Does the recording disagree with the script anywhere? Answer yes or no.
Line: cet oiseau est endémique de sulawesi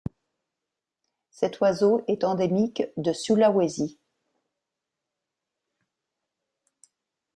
no